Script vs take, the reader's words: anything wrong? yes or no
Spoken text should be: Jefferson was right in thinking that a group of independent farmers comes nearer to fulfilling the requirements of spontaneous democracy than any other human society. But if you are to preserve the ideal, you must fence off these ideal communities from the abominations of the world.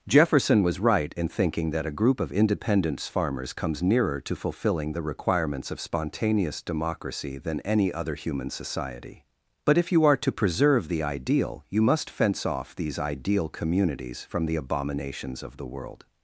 yes